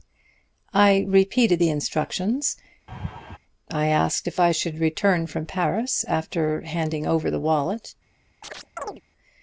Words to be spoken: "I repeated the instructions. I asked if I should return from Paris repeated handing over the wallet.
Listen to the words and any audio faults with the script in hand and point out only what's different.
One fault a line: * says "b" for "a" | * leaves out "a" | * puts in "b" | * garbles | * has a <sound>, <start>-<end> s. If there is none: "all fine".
* has a laugh, 2.9-3.4 s
* says "after" for "repeated"
* has a chirp, 8.4-9.0 s